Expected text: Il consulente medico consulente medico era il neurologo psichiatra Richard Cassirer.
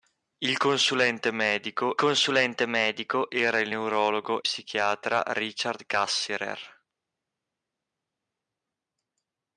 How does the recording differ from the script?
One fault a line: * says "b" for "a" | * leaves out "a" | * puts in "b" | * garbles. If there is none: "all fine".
all fine